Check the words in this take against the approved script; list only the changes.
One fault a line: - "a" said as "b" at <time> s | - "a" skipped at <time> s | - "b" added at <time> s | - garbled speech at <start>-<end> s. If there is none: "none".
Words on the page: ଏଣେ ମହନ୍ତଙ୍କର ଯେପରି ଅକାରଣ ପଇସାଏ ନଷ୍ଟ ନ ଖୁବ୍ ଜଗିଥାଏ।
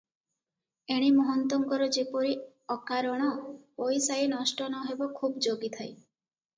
- "ହେବ" added at 4.8 s